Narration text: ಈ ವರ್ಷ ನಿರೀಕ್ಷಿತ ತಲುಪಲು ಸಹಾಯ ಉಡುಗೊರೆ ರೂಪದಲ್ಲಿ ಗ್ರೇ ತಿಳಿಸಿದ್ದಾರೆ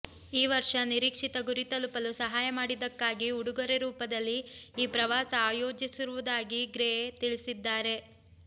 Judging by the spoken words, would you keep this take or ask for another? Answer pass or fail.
fail